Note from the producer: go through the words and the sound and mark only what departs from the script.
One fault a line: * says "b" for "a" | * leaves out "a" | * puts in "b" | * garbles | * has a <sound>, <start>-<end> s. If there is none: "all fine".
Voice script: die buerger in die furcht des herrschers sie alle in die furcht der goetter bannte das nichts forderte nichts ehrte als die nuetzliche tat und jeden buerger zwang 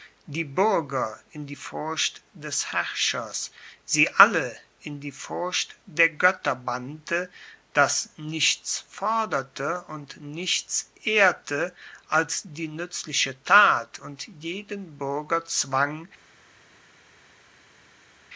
* puts in "und"